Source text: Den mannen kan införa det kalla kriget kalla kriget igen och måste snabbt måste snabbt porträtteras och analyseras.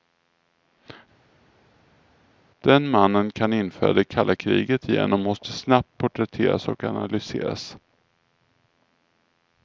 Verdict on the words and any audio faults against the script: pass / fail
fail